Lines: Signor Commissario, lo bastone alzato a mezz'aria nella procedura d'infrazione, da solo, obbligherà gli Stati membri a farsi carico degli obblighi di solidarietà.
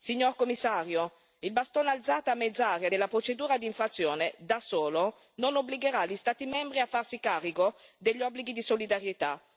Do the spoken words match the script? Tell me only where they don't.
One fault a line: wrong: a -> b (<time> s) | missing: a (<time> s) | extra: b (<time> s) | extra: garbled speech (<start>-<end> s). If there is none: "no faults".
wrong: lo -> il (1.4 s)
wrong: nella -> della (2.9 s)
extra: non (5.4 s)